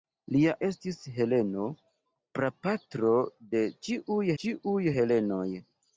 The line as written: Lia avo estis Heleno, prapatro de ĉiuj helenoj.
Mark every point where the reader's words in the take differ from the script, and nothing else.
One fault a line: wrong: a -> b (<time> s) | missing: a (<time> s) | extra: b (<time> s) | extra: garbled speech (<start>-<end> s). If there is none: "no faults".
missing: avo (0.5 s)
extra: ĉiuj (4.4 s)